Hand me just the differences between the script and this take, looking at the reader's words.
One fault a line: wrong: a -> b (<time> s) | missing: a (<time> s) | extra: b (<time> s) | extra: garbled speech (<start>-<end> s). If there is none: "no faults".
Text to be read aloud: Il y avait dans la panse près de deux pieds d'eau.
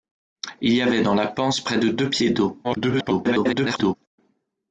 extra: garbled speech (2.6-4.0 s)